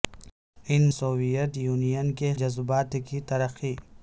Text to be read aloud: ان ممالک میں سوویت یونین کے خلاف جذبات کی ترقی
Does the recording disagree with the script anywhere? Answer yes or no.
yes